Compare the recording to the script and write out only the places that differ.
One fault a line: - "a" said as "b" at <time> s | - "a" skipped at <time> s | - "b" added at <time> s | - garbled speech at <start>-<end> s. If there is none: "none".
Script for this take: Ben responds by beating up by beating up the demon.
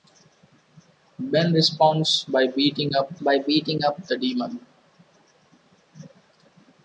none